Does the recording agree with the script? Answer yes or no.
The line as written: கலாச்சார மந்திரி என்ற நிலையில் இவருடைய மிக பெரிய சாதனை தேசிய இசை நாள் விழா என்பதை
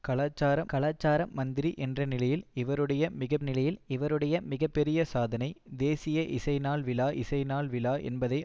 no